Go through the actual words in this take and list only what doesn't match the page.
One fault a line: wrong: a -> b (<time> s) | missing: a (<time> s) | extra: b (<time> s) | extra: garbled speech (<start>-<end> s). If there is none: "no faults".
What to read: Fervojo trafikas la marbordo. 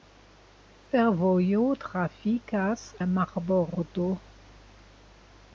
no faults